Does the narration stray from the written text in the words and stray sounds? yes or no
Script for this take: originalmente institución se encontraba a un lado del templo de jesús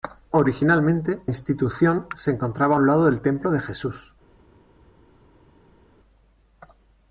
no